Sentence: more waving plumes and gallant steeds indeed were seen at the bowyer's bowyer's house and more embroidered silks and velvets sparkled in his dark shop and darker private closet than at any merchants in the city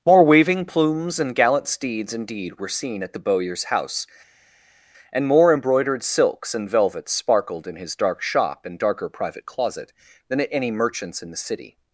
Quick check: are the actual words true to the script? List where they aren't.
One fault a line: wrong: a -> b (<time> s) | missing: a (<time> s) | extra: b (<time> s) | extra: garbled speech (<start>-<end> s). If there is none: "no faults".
missing: bowyer's (3.6 s)